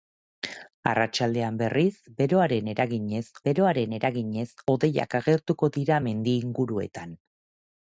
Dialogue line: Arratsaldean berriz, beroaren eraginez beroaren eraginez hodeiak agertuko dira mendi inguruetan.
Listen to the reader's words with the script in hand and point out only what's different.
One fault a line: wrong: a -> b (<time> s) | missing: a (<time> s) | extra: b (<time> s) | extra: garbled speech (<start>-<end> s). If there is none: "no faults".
no faults